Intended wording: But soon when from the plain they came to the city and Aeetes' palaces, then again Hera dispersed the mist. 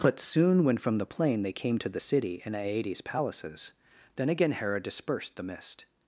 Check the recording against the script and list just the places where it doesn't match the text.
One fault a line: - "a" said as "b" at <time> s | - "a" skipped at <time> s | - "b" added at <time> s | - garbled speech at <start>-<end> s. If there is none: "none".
none